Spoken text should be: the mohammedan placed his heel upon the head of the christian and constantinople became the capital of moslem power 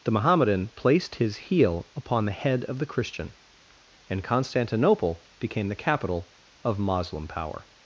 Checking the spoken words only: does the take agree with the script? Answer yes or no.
yes